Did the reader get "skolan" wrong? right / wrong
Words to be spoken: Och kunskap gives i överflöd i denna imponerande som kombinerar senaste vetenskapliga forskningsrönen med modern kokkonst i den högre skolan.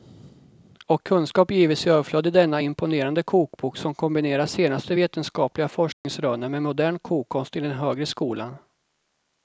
right